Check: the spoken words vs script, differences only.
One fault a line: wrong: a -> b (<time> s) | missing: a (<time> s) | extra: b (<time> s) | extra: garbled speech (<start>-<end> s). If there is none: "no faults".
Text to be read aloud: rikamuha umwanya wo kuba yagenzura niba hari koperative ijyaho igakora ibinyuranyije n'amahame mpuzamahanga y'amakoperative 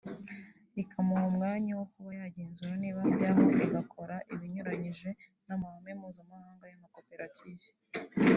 missing: hari koperative (3.0 s)